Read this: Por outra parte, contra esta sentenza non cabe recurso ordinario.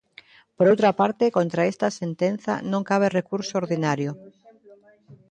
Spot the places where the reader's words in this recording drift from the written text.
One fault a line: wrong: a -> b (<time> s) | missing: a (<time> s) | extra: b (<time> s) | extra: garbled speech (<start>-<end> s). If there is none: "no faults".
no faults